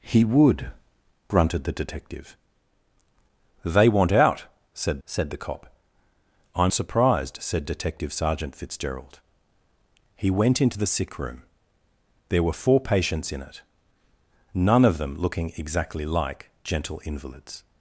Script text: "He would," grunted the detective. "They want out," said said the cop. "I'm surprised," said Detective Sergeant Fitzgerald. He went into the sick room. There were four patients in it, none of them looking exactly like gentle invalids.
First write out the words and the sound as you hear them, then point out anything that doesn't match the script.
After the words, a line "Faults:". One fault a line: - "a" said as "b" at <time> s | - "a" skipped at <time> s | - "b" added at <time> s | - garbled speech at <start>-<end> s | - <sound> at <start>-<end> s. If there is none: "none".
"He would," grunted the detective. "They want out," said said the cop. "I'm surprised," said Detective Sergeant Fitzgerald. He went into the sick room. There were four patients in it, none of them looking exactly like gentle invalids.
Faults:
none